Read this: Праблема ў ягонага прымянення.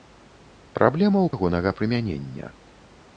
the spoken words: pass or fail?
pass